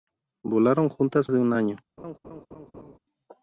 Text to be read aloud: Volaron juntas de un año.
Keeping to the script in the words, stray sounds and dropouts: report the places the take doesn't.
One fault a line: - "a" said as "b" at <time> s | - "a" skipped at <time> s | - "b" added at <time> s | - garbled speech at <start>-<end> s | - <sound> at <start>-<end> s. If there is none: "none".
- laugh at 2.0-3.0 s